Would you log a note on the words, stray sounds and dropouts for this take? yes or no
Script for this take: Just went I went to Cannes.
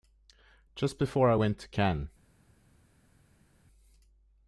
yes